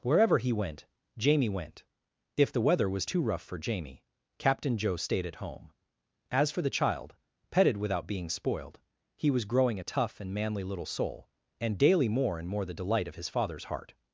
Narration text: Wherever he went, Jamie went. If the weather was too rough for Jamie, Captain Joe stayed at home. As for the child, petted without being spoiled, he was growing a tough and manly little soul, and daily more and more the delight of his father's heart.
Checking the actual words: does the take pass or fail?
pass